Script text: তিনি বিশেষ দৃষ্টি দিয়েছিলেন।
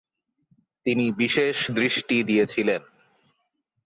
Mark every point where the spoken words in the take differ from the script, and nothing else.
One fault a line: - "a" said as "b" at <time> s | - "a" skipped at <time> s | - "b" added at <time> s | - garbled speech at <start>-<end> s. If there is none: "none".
none